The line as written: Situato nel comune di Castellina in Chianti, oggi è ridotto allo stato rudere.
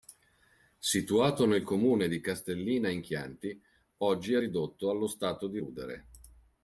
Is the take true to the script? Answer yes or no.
no